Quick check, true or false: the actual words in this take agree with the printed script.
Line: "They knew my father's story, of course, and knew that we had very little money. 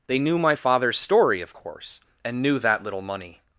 false